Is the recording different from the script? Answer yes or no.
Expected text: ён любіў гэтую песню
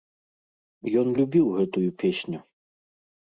no